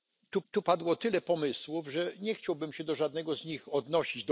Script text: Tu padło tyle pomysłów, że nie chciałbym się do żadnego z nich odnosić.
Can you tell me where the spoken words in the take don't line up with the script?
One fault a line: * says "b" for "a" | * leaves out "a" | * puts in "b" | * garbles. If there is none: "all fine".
* puts in "tu"